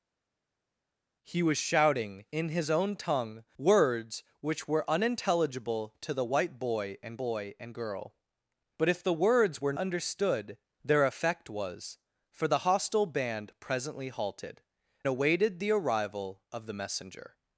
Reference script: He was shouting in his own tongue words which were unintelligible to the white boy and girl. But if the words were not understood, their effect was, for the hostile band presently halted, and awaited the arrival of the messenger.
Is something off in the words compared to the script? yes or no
yes